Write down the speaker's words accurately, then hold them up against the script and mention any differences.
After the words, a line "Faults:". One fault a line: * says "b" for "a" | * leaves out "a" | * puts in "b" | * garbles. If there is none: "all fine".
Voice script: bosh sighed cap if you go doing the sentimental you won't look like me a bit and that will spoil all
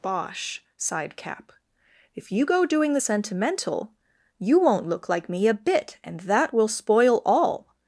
bosh sighed cap if you go doing the sentimental you won't look like me a bit and that will spoil all
Faults:
all fine